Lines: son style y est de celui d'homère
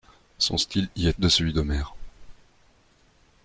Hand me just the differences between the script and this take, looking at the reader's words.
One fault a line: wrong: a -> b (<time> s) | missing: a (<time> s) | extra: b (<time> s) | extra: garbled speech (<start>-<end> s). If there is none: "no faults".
no faults